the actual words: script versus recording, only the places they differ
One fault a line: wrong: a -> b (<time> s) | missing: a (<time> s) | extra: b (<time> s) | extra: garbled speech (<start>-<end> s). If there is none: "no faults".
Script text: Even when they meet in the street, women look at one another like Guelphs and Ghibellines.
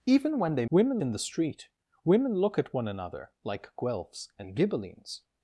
wrong: meet -> women (0.7 s)